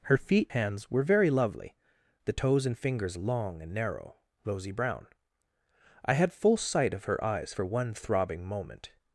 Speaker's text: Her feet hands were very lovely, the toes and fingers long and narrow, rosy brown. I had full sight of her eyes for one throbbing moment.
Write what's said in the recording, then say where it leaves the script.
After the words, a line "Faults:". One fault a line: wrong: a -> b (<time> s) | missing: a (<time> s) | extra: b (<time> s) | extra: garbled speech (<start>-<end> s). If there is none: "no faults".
Her feet hands were very lovely, the toes and fingers long and narrow, rosy brown. I had full sight of her eyes for one throbbing moment.
Faults:
no faults